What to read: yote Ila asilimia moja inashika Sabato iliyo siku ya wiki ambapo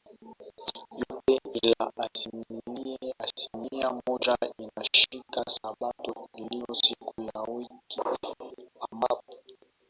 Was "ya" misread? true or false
false